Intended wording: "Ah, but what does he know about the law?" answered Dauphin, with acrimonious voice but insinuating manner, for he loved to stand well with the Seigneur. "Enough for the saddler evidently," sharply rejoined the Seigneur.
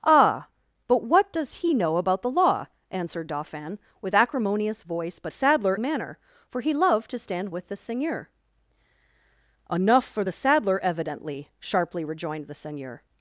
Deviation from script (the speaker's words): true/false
true